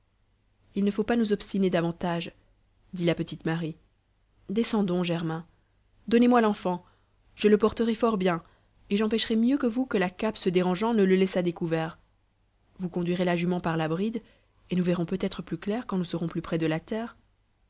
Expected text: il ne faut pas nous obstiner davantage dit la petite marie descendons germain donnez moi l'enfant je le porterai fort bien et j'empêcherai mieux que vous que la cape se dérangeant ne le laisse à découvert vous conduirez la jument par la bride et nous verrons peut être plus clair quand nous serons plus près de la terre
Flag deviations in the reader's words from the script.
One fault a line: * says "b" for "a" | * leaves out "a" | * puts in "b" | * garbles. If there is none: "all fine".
all fine